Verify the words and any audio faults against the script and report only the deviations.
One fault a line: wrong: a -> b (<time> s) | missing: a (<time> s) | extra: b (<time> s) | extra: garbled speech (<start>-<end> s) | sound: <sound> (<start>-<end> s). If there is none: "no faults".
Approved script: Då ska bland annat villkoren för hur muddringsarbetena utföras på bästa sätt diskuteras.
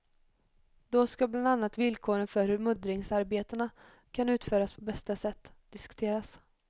extra: kan (4.1 s)